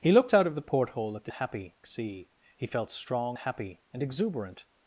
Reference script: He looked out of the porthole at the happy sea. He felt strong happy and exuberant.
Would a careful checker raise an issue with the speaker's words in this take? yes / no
no